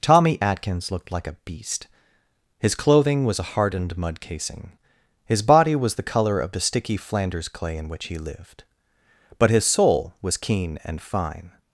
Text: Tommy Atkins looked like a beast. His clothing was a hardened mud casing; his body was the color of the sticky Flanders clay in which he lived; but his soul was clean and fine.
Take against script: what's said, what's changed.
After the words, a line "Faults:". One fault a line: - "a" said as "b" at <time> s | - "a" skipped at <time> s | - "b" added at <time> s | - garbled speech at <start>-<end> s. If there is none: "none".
Tommy Atkins looked like a beast. His clothing was a hardened mud casing; his body was the color of the sticky Flanders clay in which he lived; but his soul was keen and fine.
Faults:
- "clean" said as "keen" at 10.4 s